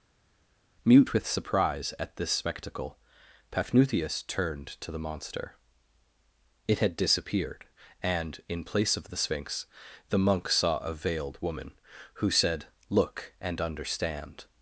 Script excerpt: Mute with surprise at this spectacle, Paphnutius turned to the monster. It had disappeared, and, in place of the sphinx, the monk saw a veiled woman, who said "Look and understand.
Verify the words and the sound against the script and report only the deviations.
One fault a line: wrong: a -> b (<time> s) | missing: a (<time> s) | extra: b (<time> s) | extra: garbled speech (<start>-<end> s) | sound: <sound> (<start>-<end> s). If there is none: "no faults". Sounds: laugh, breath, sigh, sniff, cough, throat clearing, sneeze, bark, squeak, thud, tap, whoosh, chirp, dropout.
no faults